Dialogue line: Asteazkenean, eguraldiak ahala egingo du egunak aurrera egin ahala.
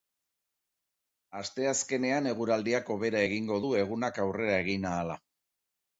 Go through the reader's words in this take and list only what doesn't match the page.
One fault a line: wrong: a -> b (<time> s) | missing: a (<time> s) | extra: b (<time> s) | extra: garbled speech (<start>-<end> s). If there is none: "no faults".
wrong: ahala -> hobera (3.0 s)